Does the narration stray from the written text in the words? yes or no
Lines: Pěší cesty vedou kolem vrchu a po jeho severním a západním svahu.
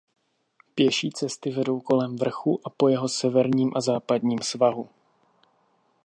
no